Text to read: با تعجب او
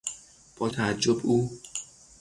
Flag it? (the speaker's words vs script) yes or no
no